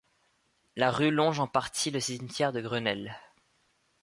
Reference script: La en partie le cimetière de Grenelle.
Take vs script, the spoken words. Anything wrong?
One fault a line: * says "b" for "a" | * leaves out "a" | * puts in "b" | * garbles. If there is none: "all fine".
* puts in "rue longe"